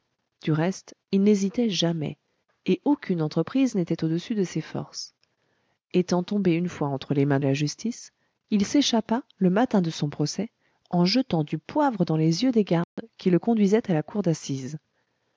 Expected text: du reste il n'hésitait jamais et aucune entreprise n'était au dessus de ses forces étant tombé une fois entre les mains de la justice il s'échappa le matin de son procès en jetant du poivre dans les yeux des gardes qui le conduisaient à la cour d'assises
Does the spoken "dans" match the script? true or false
true